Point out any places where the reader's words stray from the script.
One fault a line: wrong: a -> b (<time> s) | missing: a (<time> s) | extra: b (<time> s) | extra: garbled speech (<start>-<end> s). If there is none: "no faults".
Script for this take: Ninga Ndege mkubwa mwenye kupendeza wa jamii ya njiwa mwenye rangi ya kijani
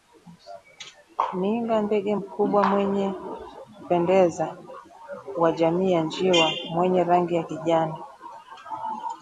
no faults